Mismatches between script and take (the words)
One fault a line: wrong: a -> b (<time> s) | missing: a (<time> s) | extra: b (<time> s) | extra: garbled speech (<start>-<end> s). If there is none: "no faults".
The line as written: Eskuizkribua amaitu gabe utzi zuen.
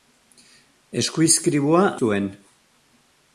missing: amaitu gabe utzi (1.8 s)